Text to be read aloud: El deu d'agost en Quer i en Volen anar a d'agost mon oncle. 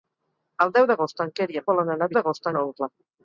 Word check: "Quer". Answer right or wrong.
right